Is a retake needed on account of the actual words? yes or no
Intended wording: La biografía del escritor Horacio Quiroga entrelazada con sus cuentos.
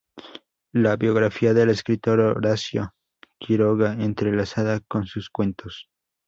no